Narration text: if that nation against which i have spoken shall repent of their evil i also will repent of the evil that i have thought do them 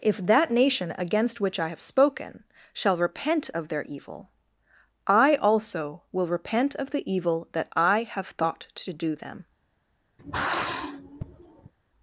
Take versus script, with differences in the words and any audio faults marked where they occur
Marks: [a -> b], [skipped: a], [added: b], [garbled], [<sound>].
if that nation against which i have spoken shall repent of their evil i also will repent of the evil that i have thought [added: to] do them [sigh]